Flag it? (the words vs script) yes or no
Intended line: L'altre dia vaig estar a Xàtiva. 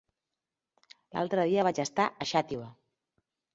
no